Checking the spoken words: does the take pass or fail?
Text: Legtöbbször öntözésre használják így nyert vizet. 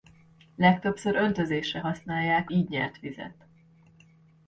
pass